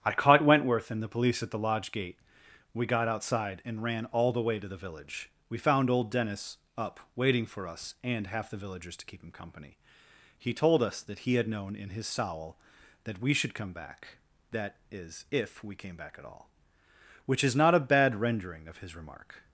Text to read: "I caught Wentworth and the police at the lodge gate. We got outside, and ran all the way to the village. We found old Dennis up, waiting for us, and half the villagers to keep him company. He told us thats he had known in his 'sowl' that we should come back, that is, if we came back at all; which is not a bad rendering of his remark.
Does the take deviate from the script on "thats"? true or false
true